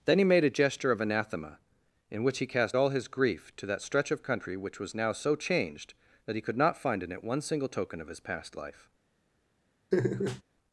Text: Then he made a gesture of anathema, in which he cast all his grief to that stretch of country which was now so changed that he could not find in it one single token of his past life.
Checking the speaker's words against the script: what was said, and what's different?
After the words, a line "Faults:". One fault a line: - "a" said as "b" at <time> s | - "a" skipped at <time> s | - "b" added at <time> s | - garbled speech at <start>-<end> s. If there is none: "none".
Then he made a gesture of anathema, in which he cast all his grief to that stretch of country which was now so changed that he could not find in it one single token of his past life.
Faults:
none